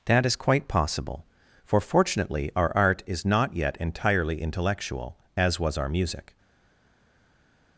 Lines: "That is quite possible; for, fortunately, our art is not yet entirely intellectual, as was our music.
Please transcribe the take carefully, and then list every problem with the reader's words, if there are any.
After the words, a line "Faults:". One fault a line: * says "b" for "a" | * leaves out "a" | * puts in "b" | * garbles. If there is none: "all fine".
"That is quite possible; for, fortunately, our art is not yet entirely intellectual, as was our music.
Faults:
all fine